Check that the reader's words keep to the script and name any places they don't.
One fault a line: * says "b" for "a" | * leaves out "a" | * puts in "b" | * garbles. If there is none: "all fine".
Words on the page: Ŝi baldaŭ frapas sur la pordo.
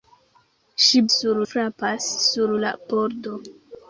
* says "sur" for "baldaŭ"